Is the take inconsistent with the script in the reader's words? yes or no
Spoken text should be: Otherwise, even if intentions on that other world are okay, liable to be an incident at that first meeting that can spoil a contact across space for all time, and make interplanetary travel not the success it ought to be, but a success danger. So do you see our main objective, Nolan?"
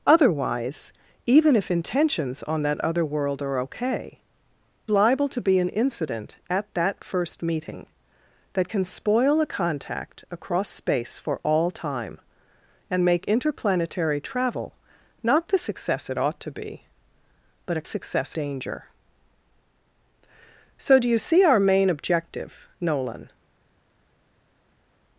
no